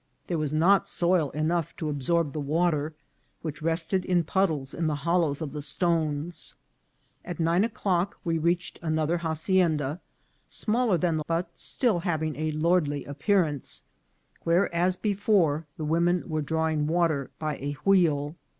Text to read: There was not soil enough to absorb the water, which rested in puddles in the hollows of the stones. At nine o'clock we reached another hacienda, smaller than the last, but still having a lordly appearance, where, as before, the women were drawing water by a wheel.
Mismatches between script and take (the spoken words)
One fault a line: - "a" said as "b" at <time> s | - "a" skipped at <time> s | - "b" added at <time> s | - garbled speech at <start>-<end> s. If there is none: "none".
- "last" skipped at 11.2 s